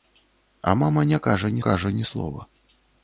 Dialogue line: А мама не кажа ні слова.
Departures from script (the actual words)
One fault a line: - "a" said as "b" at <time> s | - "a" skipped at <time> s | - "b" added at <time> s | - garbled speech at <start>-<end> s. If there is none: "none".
- "кажа ні" added at 1.6 s